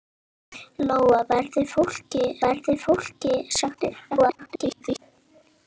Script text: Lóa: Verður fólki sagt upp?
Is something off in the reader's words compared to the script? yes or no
yes